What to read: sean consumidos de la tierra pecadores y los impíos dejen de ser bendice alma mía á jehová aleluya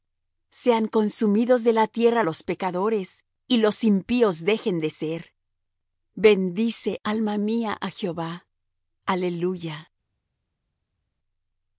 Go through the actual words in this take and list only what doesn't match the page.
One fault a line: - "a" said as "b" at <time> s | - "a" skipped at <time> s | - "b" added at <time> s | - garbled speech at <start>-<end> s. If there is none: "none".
- "los" added at 2.2 s